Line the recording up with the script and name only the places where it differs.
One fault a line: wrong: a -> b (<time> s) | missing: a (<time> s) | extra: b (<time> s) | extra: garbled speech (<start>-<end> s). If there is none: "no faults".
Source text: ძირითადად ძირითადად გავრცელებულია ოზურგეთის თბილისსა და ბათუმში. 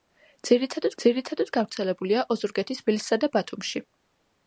no faults